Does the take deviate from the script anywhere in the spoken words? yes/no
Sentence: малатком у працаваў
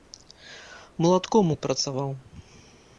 no